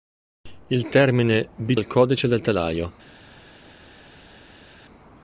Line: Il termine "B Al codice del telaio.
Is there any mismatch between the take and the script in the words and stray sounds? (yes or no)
no